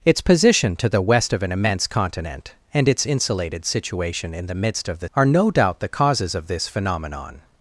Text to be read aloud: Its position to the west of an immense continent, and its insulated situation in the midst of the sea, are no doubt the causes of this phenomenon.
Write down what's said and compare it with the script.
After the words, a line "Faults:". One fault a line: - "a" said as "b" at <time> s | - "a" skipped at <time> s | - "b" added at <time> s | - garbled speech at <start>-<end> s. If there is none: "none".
Its position to the west of an immense continent, and its insulated situation in the midst of the are no doubt the causes of this phenomenon.
Faults:
- "sea" skipped at 5.1 s